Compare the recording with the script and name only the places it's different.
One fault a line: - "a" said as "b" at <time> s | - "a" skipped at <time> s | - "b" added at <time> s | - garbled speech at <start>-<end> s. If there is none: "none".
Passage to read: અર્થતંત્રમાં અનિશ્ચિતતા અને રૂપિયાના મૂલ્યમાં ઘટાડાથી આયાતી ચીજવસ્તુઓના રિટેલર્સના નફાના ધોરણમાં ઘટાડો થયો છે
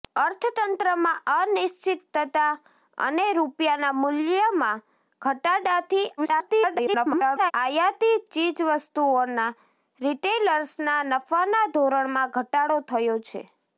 - garbled speech at 6.2-7.5 s